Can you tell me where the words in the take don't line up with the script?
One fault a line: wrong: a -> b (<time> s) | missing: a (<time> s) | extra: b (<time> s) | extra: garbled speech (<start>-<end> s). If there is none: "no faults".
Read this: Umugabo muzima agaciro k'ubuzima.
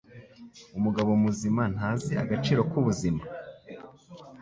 extra: ntazi (1.7 s)